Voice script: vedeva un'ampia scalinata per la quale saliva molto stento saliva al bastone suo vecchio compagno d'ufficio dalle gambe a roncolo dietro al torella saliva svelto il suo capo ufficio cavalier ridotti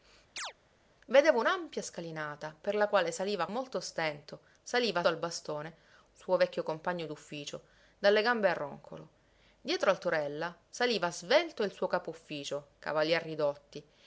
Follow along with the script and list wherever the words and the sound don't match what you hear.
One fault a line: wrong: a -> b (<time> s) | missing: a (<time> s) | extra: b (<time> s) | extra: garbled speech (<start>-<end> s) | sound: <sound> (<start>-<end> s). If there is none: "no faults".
sound: chirp (0.4-0.5 s)